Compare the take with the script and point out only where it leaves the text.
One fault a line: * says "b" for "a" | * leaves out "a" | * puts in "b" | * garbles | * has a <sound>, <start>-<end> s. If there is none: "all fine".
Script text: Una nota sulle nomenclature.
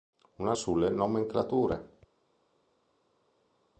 * leaves out "nota"